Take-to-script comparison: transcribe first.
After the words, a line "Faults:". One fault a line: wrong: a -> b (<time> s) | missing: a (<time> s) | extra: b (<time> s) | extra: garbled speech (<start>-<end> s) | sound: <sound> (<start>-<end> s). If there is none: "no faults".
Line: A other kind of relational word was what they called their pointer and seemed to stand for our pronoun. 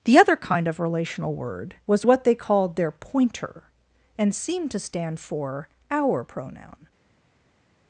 The other kind of relational word was what they called their pointer and seemed to stand for our pronoun.
Faults:
wrong: A -> The (0.0 s)